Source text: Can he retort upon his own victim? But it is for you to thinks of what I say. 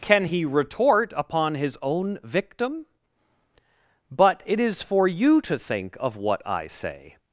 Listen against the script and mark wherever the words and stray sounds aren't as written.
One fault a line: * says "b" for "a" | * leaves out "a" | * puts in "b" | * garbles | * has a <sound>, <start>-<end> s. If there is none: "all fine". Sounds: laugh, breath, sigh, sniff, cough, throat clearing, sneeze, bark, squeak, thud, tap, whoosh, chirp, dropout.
* says "think" for "thinks"